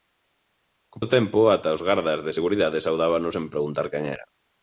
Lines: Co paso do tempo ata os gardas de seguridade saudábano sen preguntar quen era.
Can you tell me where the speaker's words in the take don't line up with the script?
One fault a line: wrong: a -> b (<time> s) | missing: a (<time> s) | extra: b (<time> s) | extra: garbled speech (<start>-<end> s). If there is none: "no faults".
missing: paso (1.0 s)